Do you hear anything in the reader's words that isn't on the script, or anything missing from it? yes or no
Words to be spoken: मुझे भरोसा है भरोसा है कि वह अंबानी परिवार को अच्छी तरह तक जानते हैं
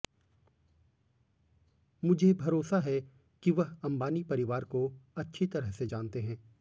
yes